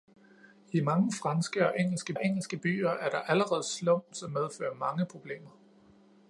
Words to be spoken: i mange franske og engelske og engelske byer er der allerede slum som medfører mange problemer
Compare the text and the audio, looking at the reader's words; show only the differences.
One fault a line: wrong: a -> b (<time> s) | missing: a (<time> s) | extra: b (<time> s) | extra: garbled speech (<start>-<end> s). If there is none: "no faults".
no faults